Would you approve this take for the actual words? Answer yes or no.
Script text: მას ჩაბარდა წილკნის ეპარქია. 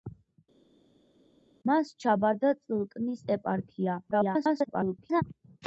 no